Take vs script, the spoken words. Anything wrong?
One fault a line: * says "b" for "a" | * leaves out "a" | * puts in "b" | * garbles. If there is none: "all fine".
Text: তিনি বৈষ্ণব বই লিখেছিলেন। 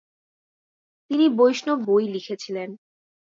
all fine